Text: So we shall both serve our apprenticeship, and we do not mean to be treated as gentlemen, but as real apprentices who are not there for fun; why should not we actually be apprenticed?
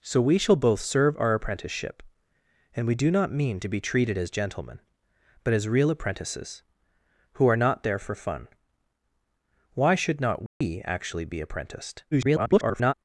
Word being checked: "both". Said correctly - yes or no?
yes